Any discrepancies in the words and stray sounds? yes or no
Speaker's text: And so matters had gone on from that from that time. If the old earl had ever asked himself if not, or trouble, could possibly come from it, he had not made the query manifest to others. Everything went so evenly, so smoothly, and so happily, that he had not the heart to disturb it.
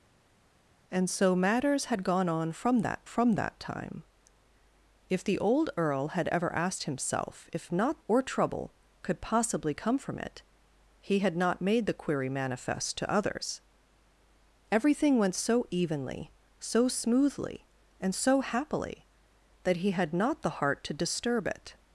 no